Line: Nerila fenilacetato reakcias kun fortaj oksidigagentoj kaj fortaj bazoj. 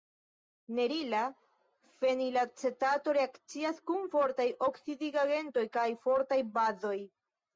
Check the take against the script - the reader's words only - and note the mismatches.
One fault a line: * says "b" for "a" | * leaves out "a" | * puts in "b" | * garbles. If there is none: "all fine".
all fine